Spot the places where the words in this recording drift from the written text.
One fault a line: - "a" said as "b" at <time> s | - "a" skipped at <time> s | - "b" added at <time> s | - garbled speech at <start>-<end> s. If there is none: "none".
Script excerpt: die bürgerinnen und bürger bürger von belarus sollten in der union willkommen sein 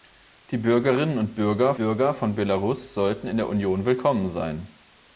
none